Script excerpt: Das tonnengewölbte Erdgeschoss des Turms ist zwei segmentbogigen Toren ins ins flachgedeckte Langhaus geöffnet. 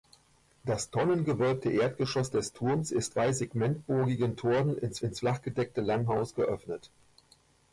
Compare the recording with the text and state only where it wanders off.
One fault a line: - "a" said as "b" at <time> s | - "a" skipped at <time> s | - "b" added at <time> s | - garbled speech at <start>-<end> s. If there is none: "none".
none